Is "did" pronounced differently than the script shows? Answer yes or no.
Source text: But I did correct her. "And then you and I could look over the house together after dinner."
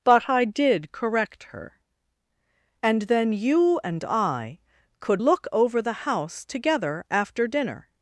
no